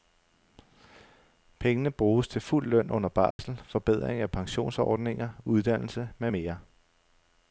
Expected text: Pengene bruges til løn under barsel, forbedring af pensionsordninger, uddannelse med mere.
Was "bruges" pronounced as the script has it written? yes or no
yes